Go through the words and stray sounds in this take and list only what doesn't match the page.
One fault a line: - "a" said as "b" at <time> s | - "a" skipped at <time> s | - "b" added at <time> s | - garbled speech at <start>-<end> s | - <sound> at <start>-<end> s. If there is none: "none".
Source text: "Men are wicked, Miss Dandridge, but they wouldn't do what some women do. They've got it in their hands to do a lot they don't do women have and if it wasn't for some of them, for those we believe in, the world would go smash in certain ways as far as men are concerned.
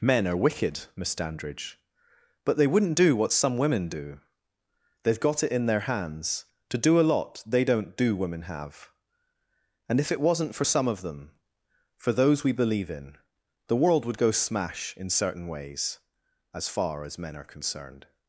none